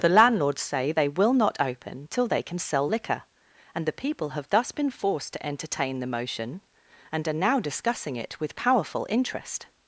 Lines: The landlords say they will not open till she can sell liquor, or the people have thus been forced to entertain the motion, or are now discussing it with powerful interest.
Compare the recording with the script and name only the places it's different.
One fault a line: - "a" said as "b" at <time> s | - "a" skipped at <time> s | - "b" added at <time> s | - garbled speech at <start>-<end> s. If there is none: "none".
- "she" said as "they" at 2.3 s
- "or" said as "and" at 3.7 s
- "or" said as "and" at 7.1 s